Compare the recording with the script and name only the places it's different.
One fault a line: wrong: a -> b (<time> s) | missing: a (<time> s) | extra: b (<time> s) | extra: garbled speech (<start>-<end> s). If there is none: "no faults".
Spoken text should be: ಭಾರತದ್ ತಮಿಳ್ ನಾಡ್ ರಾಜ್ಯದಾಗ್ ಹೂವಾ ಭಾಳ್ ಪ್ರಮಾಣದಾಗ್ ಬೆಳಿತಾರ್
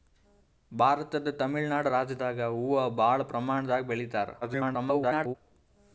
extra: garbled speech (4.4-5.4 s)